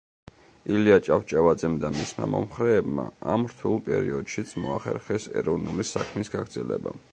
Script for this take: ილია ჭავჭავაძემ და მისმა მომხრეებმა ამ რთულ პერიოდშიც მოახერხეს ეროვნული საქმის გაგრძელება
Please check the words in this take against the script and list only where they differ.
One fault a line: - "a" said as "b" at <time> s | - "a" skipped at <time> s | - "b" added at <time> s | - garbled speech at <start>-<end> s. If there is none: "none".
none